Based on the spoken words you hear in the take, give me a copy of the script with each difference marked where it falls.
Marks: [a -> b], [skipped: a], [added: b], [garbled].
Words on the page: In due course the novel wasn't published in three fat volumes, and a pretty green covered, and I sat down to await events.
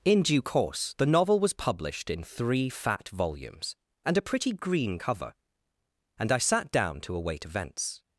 In due course the novel [wasn't -> was] published in three fat volumes, and a pretty green [covered, -> cover] and I sat down to await events.